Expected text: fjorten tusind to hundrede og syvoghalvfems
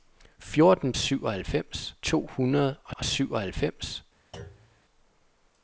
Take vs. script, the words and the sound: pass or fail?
fail